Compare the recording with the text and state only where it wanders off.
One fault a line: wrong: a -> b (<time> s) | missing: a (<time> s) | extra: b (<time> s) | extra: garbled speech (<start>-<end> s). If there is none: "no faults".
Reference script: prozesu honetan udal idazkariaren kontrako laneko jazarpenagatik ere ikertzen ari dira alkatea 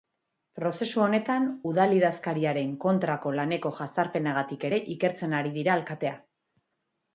no faults